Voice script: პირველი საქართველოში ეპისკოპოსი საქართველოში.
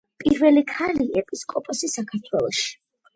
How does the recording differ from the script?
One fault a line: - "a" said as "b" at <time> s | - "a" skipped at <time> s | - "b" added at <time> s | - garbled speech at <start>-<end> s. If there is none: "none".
- "საქართველოში" said as "ქალი" at 0.7 s